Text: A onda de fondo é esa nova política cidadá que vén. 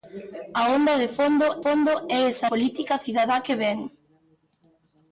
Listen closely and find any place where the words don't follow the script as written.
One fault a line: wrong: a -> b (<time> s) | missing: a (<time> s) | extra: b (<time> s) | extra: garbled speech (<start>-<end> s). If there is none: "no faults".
extra: fondo (1.6 s)
missing: nova (2.5 s)